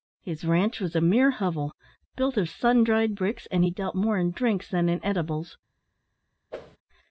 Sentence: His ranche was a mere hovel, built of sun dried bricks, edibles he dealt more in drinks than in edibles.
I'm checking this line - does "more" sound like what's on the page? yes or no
yes